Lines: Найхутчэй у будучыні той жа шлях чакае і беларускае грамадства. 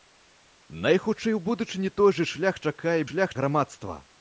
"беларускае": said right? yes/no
no